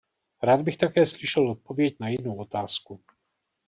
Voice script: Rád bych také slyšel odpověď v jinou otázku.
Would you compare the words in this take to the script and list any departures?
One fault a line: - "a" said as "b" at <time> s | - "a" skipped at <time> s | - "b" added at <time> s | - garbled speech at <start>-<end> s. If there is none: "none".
- "v" said as "na" at 2.0 s